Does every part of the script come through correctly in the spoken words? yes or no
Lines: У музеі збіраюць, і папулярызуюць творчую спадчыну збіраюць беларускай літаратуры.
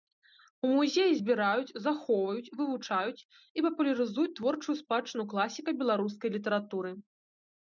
no